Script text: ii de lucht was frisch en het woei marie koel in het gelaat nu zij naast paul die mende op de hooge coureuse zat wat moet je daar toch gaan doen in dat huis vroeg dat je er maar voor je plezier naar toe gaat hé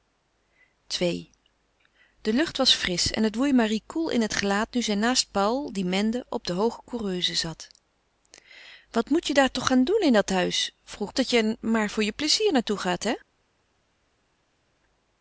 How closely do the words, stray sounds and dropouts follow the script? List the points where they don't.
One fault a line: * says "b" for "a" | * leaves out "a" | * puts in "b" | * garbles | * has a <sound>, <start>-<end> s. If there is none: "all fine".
all fine